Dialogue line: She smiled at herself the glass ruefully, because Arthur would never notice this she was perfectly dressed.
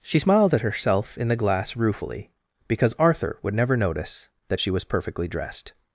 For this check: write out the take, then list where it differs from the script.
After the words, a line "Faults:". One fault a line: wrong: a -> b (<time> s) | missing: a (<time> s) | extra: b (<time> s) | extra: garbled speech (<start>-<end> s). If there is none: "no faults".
She smiled at herself in the glass ruefully, because Arthur would never notice that she was perfectly dressed.
Faults:
extra: in (1.2 s)
wrong: this -> that (4.5 s)